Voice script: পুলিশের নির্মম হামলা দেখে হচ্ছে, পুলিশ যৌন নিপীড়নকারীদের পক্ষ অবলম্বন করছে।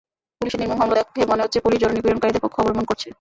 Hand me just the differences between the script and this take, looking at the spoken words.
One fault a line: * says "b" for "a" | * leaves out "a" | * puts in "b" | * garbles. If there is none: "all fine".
* puts in "মনে"